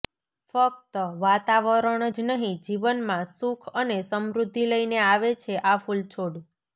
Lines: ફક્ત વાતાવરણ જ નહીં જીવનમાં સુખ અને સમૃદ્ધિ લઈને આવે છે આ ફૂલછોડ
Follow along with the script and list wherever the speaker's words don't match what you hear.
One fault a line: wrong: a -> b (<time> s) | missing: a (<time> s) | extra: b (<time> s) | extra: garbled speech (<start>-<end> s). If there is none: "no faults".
no faults